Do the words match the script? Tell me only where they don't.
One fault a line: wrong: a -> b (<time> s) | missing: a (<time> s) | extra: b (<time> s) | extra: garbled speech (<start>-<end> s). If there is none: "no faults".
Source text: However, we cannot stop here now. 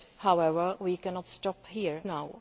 no faults